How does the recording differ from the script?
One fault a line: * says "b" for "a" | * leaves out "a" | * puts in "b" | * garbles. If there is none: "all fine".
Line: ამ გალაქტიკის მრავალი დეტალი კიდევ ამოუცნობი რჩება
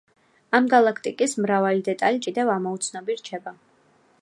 all fine